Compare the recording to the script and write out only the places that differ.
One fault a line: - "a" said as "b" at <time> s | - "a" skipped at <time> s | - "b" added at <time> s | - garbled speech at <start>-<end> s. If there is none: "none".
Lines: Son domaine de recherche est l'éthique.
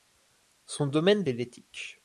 - "recherche" skipped at 1.3 s